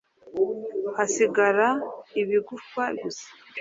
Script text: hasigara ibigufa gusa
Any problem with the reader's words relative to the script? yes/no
no